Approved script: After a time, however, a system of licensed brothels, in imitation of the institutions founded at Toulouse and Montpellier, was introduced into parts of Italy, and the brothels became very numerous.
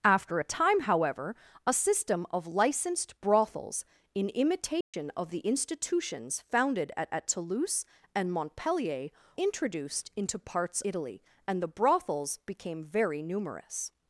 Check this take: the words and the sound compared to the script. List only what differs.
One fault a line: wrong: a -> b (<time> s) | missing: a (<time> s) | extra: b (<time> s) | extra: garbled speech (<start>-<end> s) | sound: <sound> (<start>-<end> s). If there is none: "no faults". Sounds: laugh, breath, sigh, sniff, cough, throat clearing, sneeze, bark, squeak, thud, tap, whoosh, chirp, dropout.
sound: dropout (4.8-4.9 s)
extra: at (7.1 s)
missing: was (9.1 s)
missing: of (10.8 s)